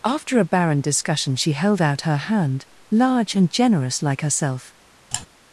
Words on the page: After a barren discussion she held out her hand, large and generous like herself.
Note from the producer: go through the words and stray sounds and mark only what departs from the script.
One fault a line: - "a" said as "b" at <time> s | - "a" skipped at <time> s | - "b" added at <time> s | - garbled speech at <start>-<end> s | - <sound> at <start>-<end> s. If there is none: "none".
- sigh at 5.1-5.3 s